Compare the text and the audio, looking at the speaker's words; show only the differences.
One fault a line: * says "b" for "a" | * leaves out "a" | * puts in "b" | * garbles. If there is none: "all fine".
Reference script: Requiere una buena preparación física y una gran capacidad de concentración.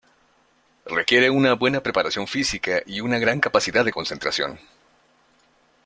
all fine